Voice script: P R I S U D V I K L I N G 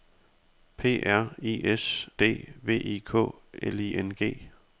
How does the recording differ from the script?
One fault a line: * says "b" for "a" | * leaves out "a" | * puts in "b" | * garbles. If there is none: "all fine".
* leaves out "U"